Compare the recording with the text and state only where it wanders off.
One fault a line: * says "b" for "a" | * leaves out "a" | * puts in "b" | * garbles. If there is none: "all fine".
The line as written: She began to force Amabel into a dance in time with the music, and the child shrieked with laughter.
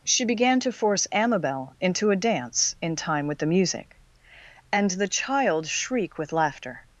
* says "shriek" for "shrieked"